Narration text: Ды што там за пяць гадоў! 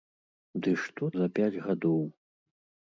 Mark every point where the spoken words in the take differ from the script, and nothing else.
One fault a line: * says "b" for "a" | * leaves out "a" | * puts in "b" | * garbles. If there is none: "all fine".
* leaves out "там"